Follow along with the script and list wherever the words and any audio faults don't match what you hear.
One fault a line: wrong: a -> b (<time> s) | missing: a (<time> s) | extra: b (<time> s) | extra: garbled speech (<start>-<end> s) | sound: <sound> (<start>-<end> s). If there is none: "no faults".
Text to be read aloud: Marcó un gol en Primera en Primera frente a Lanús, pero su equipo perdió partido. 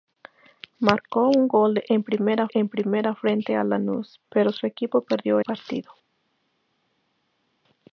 no faults